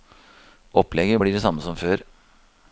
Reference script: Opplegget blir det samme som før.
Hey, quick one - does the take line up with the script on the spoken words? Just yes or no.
yes